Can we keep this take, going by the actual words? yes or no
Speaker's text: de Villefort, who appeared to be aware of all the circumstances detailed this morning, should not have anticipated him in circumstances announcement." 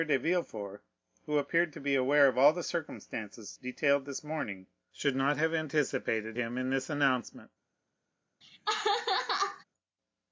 no